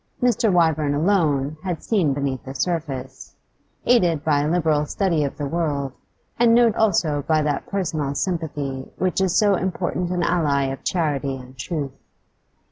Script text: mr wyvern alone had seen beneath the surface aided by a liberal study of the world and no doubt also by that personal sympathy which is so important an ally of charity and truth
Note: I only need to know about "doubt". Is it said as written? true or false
false